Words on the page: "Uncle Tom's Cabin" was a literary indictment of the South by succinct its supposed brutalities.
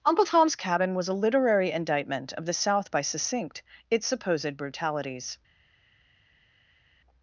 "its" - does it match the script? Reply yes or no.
yes